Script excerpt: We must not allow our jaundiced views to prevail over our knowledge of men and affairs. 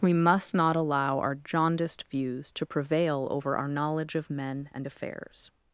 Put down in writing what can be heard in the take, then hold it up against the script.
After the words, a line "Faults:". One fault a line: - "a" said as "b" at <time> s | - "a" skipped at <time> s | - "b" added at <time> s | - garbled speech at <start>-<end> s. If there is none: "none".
We must not allow our jaundiced views to prevail over our knowledge of men and affairs.
Faults:
none